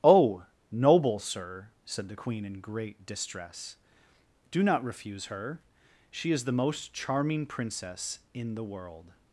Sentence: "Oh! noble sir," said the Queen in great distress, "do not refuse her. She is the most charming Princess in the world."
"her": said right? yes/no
yes